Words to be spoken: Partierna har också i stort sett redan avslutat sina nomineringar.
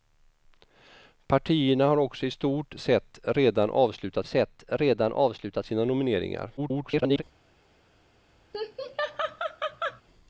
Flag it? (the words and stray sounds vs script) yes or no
yes